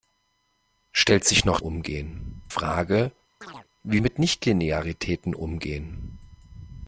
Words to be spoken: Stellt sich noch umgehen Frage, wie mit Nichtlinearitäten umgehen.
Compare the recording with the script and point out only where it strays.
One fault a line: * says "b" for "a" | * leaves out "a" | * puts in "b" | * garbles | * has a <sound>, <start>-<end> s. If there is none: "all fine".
* has a chirp, 3.4-3.7 s